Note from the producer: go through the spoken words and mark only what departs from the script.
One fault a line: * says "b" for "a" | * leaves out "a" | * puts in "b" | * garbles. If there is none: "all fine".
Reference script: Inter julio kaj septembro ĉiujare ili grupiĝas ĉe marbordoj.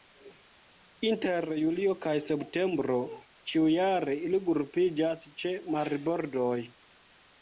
all fine